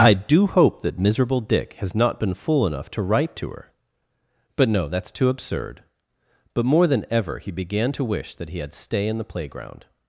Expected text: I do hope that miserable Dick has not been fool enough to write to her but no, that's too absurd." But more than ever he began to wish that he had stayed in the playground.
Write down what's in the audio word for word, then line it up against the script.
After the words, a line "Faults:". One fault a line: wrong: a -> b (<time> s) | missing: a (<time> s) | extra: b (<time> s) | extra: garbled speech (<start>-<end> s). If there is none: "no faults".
I do hope that miserable Dick has not been fool enough to write to her but no, that's too absurd." But more than ever he began to wish that he had stay in the playground.
Faults:
wrong: stayed -> stay (8.7 s)